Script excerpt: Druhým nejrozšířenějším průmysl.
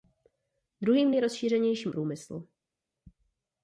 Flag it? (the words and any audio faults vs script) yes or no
no